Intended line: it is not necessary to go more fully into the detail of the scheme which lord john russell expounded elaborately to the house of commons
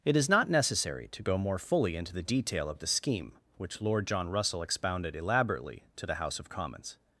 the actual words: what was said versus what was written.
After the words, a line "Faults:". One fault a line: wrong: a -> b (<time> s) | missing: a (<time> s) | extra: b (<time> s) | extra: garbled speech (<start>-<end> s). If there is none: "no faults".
it is not necessary to go more fully into the detail of the scheme which lord john russell expounded elaborately to the house of commons
Faults:
no faults